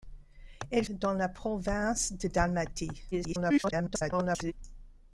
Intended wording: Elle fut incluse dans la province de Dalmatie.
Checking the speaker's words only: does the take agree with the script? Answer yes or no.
no